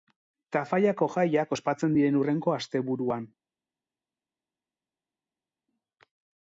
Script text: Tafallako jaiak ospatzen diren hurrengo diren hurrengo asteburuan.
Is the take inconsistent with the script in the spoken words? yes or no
yes